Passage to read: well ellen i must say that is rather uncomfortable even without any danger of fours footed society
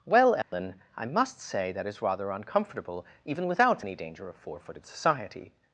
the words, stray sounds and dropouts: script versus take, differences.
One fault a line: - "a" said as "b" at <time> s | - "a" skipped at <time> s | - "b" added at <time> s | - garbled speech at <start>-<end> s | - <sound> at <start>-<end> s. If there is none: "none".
- dropout at 0.4-0.5 s
- "fours" said as "four" at 4.3 s